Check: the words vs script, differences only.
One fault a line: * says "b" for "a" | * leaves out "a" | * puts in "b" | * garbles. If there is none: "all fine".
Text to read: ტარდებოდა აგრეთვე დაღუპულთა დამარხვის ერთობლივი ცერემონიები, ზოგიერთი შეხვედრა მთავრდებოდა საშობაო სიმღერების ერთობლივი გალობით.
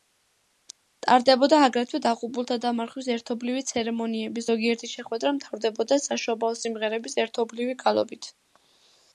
all fine